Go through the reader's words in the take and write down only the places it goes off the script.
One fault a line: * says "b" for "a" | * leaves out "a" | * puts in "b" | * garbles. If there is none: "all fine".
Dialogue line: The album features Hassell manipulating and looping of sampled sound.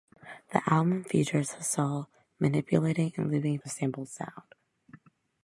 all fine